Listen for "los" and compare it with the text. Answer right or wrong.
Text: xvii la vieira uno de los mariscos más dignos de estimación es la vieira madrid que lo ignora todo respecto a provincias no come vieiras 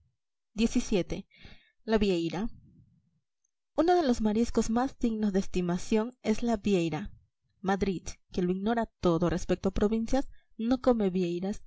right